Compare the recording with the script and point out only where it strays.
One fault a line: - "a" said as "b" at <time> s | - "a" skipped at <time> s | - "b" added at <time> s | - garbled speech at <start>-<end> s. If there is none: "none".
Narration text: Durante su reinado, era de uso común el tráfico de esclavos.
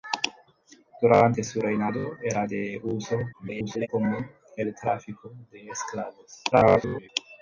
- garbled speech at 3.3-3.9 s
- garbled speech at 6.5-7.1 s